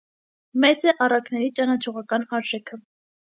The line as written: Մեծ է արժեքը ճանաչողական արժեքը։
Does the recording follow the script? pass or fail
fail